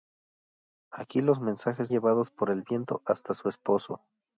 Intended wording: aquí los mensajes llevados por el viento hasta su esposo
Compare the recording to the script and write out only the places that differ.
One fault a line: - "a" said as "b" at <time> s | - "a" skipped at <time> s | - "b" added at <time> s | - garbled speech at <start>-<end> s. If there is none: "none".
none